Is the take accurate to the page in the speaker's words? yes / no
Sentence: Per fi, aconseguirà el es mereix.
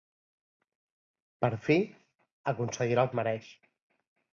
yes